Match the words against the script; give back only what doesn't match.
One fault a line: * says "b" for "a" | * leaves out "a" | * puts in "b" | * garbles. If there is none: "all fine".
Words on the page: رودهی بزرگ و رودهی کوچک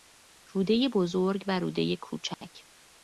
all fine